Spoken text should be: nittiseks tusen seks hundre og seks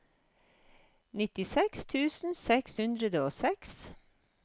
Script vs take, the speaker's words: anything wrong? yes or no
no